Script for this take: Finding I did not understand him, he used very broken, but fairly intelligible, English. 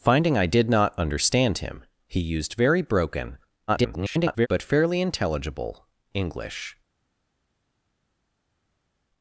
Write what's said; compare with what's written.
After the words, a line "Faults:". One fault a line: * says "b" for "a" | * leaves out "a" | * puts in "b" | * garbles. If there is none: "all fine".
Finding I did not understand him, he used very broken, [garbled] but fairly intelligible, English.
Faults:
* garbles